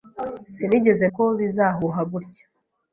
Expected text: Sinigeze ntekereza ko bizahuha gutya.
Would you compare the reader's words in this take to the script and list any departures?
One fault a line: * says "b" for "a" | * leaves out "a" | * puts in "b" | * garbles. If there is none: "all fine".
* leaves out "ntekereza"